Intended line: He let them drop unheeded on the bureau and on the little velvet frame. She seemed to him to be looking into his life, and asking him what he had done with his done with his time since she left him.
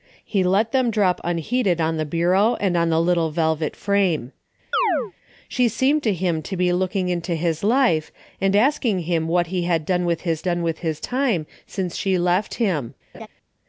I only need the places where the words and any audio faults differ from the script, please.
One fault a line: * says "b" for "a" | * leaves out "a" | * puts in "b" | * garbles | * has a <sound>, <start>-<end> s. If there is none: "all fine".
* has a chirp, 4.7-5.1 s
* has a laugh, 13.1-13.3 s